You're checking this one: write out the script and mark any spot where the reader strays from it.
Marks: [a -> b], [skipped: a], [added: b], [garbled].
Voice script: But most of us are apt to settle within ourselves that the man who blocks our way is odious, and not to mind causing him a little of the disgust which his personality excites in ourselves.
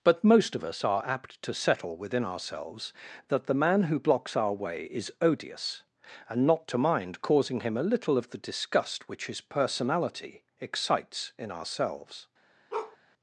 But most of us are apt to settle within ourselves that the man who blocks our way is odious, and not to mind causing him a little of the disgust which his personality excites in ourselves.